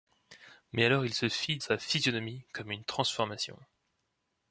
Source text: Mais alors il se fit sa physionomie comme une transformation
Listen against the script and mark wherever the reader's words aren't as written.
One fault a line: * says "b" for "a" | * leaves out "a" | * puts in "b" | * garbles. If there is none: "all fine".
all fine